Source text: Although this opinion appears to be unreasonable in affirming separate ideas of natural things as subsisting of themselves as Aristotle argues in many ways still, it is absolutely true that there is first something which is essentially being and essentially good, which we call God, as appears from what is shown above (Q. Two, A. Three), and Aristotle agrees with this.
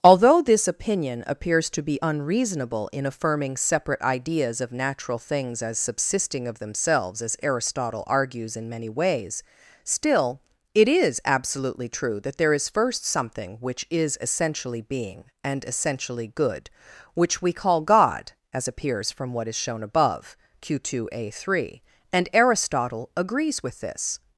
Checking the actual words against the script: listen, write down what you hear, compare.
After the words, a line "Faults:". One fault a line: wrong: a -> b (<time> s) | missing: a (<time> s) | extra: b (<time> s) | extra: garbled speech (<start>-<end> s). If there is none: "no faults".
Although this opinion appears to be unreasonable in affirming separate ideas of natural things as subsisting of themselves as Aristotle argues in many ways still, it is absolutely true that there is first something which is essentially being and essentially good, which we call God, as appears from what is shown above (Q. Two, A. Three), and Aristotle agrees with this.
Faults:
no faults